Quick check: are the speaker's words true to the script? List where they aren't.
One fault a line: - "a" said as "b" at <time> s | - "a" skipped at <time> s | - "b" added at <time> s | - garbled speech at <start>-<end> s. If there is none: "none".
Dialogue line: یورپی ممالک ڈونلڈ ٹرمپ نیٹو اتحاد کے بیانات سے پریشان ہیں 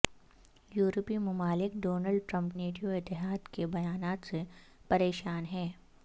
none